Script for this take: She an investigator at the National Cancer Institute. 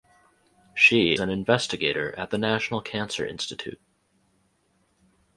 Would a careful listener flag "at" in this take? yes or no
no